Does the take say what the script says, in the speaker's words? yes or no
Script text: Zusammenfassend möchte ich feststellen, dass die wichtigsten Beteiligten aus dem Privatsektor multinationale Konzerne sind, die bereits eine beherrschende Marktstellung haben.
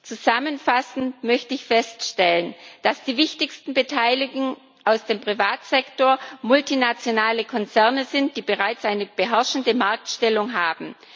yes